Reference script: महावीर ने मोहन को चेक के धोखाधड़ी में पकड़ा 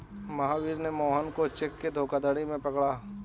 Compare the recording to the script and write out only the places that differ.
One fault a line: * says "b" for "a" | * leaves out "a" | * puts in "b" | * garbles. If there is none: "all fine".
all fine